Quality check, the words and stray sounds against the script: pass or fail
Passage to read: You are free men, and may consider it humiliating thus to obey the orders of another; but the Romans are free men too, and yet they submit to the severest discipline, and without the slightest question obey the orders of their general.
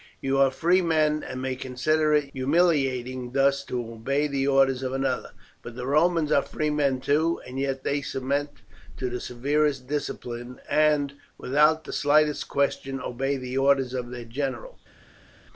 pass